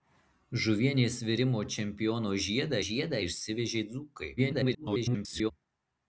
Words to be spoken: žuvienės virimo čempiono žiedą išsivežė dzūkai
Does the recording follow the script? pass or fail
fail